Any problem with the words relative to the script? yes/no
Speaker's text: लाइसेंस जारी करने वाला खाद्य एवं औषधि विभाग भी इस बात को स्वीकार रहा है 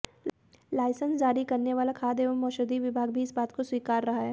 no